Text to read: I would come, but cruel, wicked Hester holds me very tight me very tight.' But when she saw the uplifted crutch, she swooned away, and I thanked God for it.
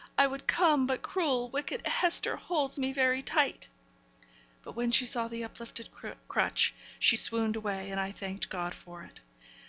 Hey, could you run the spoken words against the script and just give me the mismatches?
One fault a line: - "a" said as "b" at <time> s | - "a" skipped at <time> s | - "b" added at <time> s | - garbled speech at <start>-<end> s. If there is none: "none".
- "me very tight" skipped at 3.7 s